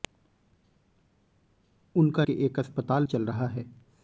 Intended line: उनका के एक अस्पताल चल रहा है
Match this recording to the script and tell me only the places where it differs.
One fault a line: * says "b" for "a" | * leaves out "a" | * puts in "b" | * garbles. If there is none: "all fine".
all fine